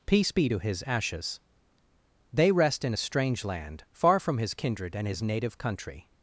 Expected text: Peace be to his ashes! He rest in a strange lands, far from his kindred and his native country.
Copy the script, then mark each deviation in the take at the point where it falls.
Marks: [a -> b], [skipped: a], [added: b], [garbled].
Peace be to his ashes! [He -> They] rest in a strange [lands, -> land] far from his kindred and his native country.